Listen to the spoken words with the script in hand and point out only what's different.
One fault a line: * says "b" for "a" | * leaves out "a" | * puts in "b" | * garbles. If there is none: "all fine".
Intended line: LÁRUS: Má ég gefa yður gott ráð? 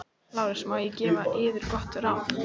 all fine